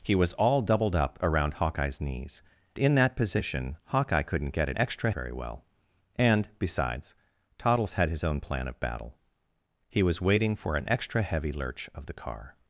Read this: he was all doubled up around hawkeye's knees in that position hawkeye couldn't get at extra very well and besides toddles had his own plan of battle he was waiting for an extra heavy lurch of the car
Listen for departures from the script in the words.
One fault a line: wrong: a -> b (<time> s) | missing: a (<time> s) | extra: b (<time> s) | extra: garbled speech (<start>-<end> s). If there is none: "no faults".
no faults